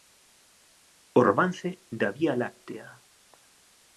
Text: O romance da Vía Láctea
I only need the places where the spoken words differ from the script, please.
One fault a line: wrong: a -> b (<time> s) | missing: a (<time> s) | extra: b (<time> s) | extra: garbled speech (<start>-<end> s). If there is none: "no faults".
no faults